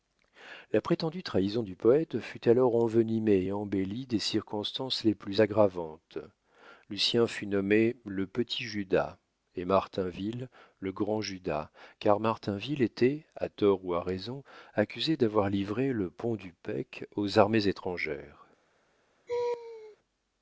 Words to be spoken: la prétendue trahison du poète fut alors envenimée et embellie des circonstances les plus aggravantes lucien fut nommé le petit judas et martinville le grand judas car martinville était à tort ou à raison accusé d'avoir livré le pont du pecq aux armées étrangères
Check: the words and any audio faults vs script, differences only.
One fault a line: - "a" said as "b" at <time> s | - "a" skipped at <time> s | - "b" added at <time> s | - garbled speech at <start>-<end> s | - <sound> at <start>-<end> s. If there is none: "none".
- laugh at 19.3-20.0 s